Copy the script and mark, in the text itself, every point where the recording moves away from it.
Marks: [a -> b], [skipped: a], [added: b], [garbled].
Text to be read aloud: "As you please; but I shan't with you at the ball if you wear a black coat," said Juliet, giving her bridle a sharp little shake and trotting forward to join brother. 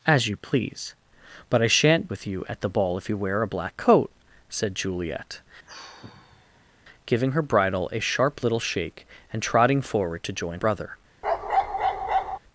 "As you please; but I shan't with you at the ball if you wear a black coat," said Juliet, giving her bridle a sharp little shake and trotting forward to join brother.